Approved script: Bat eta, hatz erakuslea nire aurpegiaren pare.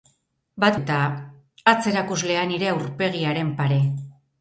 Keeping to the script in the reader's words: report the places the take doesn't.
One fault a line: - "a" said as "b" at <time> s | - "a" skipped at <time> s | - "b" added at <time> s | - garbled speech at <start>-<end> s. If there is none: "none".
none